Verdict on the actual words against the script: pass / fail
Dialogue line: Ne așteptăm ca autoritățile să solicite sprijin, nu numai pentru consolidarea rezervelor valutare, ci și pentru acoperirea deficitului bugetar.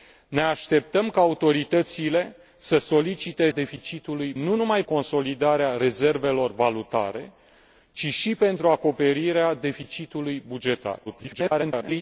fail